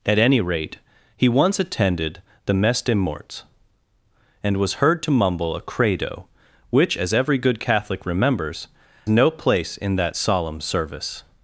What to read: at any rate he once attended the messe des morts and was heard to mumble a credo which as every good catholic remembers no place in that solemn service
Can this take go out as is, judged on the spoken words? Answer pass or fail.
pass